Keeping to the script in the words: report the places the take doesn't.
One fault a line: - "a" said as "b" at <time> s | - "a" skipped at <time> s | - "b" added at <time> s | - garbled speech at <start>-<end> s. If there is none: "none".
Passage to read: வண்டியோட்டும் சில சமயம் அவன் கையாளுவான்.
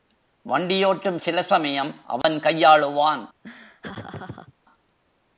none